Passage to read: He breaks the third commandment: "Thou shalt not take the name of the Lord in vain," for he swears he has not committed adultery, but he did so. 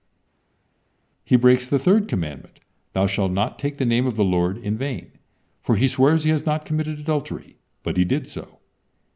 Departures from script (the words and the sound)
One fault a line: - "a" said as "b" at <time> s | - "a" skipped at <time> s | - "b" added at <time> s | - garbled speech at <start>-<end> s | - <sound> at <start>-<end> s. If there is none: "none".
none